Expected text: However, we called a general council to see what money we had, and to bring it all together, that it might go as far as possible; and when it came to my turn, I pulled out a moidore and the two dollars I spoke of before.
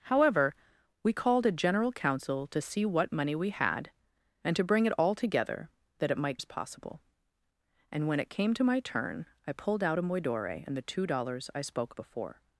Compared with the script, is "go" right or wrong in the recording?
wrong